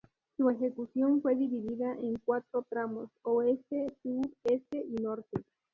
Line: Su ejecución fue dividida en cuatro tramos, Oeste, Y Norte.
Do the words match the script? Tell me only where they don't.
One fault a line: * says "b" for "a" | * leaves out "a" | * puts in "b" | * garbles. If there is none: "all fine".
* puts in "Sur Este"